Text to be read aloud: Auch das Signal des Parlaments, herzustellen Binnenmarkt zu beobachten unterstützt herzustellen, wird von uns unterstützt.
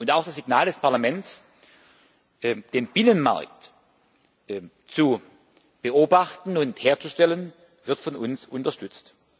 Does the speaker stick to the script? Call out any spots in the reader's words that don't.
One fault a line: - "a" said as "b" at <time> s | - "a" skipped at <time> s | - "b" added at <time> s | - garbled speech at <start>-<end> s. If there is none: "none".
- "herzustellen" said as "den" at 2.4 s
- "unterstützt" said as "und" at 6.6 s